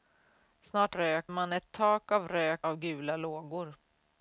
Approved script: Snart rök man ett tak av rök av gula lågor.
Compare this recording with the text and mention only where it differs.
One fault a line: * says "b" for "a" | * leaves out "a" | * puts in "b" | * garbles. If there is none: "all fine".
all fine